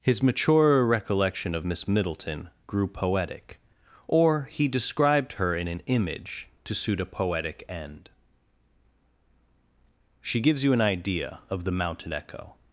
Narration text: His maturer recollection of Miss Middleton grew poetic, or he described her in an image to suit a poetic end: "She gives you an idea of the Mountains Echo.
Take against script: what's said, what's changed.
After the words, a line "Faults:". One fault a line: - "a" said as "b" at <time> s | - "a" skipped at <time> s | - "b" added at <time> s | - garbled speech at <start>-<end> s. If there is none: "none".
His maturer recollection of Miss Middleton grew poetic, or he described her in an image to suit a poetic end: "She gives you an idea of the Mountain Echo.
Faults:
- "Mountains" said as "Mountain" at 11.7 s